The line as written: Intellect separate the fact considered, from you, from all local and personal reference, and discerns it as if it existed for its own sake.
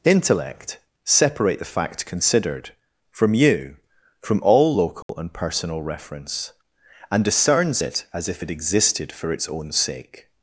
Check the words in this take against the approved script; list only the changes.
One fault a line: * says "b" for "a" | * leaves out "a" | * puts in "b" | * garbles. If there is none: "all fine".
all fine